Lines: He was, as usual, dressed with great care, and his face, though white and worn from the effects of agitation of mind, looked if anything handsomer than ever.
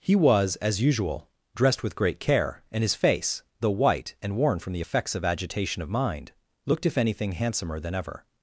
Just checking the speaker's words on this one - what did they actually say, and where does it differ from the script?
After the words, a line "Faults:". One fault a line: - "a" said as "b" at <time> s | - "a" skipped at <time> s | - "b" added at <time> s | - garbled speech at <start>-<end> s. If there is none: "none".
He was, as usual, dressed with great care, and his face, though white and worn from the effects of agitation of mind, looked if anything handsomer than ever.
Faults:
none